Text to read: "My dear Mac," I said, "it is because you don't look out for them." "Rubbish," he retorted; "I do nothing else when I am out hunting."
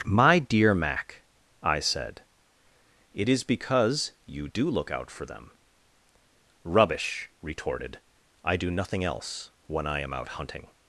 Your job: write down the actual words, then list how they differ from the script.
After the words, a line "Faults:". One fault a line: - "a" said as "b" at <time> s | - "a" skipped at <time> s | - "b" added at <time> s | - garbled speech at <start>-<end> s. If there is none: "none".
"My dear Mac," I said, "it is because you do look out for them." "Rubbish," retorted; "I do nothing else when I am out hunting."
Faults:
- "don't" said as "do" at 4.4 s
- "he" skipped at 7.3 s